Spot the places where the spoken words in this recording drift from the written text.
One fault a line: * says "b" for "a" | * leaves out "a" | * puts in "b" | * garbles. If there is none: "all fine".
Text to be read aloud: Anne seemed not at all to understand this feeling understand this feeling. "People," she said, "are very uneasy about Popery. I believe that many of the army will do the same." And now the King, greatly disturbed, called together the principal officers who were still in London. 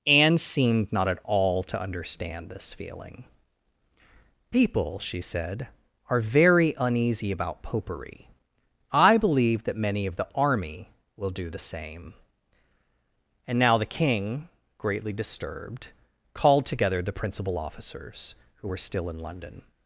* leaves out "understand this feeling"